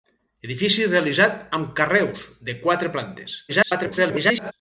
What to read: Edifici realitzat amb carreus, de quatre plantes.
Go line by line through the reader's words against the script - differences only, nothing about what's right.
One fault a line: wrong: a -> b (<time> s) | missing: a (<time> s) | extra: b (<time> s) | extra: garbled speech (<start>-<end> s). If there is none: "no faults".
extra: garbled speech (3.5-4.5 s)